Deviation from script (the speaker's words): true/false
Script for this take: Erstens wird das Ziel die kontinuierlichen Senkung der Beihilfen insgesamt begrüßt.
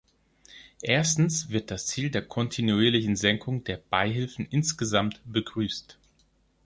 true